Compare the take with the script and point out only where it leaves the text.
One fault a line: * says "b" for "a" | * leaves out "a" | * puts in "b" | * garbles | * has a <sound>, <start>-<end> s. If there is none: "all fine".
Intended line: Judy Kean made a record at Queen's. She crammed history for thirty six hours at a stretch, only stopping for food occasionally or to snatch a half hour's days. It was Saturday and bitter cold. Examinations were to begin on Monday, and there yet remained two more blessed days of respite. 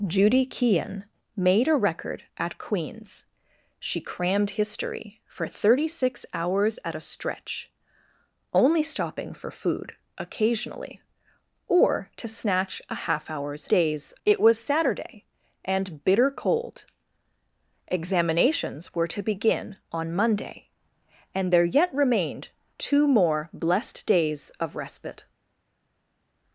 all fine